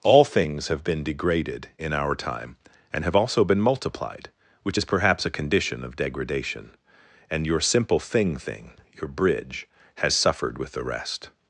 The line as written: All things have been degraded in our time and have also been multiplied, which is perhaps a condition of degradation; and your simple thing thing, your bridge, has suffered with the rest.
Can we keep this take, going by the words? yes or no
yes